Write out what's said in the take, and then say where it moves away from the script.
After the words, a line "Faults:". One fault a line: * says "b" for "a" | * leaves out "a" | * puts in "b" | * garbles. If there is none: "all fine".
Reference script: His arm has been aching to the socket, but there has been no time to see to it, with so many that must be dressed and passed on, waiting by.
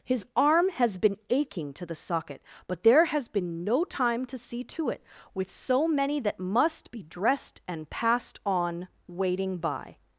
His arm has been aching to the socket, but there has been no time to see to it, with so many that must be dressed and passed on, waiting by.
Faults:
all fine